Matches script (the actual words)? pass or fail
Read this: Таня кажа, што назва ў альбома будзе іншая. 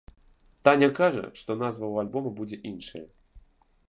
pass